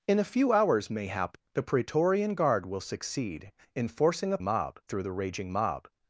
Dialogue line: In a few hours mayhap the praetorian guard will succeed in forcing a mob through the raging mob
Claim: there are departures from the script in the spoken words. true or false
false